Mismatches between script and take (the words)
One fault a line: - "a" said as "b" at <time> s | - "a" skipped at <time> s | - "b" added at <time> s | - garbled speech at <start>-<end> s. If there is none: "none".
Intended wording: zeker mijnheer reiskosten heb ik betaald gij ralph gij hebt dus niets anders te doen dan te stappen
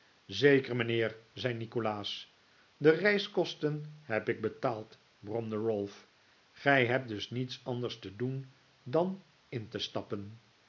- "zei nikolaas de" added at 1.3 s
- "gij" said as "bromde" at 5.2 s
- "in" added at 9.5 s